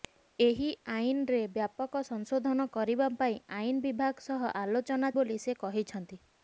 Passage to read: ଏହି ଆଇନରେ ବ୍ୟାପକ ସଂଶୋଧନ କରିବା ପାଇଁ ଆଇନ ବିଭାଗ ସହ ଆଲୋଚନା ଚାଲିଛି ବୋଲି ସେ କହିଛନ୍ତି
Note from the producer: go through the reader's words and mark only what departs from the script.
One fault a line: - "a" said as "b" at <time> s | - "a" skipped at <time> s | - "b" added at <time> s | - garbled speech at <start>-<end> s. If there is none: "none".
- "ଚାଲିଛି" skipped at 5.1 s